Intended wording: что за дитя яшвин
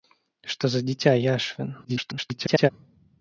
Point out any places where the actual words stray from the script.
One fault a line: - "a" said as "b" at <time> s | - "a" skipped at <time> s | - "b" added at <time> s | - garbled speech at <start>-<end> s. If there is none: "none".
- garbled speech at 1.8-2.7 s